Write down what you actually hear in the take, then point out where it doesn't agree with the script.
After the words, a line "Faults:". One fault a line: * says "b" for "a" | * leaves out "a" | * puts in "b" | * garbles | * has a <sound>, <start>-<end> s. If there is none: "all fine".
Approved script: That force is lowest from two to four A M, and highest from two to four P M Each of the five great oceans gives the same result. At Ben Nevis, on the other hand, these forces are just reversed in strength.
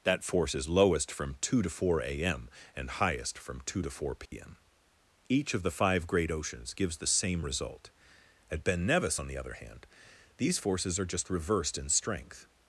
That force is lowest from two to four A M, and highest from two to four P M Each of the five great oceans gives the same result. At Ben Nevis, on the other hand, these forces are just reversed in strength.
Faults:
* has a dropout, 4.3-4.3 s